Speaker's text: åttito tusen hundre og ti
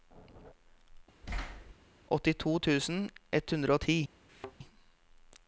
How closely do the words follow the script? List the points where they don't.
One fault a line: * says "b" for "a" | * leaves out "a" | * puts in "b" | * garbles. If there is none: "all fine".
* puts in "ett"